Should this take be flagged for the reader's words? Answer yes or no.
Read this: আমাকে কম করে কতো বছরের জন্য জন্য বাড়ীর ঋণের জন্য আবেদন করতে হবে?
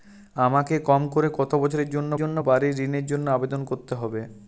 no